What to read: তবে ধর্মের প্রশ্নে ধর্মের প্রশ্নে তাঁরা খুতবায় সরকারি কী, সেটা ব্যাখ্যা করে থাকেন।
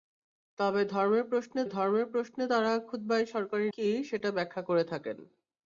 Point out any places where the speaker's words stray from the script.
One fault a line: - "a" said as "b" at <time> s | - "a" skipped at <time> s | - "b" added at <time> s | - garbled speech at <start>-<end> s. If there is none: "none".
none